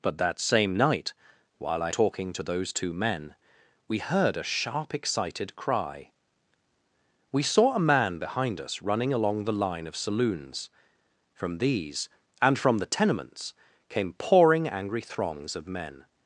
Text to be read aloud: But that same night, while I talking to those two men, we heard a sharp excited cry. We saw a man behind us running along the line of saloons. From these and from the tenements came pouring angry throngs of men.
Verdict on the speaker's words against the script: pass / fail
pass